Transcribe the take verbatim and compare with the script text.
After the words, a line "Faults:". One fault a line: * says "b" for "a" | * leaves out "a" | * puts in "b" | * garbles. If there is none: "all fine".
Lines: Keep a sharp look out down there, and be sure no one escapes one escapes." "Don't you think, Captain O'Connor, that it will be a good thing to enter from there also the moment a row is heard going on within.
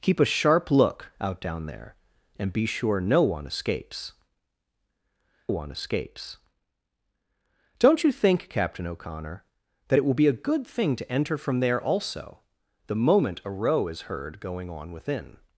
Keep a sharp look out down there, and be sure no one escapes one escapes." "Don't you think, Captain O'Connor, that it will be a good thing to enter from there also the moment a row is heard going on within.
Faults:
all fine